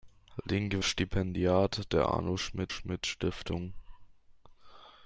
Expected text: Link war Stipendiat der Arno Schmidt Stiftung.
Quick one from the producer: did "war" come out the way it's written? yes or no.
no